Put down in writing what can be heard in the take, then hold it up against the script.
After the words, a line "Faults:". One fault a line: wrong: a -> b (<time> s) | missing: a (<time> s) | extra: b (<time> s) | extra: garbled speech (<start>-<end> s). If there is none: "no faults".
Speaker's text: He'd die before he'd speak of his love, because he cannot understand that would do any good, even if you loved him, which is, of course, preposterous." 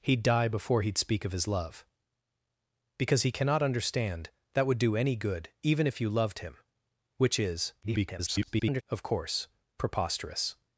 He'd die before he'd speak of his love, because he cannot understand that would do any good, even if you loved him, which is, [garbled] of course, preposterous."
Faults:
extra: garbled speech (7.8-8.8 s)